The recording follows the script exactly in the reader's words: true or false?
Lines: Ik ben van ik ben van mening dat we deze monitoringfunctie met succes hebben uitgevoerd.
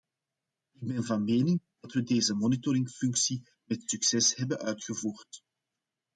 false